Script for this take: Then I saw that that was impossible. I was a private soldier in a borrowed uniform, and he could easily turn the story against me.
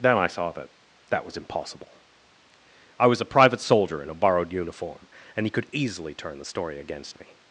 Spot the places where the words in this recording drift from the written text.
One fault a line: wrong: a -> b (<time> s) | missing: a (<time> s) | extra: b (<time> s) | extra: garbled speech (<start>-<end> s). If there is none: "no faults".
no faults